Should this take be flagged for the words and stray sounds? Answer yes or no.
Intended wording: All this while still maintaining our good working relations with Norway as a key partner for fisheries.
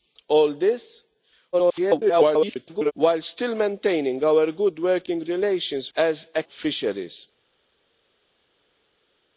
yes